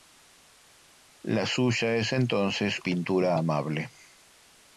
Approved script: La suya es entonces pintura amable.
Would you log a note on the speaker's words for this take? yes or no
no